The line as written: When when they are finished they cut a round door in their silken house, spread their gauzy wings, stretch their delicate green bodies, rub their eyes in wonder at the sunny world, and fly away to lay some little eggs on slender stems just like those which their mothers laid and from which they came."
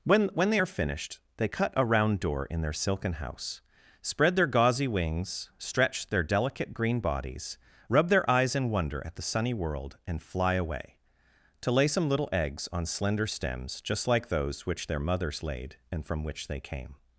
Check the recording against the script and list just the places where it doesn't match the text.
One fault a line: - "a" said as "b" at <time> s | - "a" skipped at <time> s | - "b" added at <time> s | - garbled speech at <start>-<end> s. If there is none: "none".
none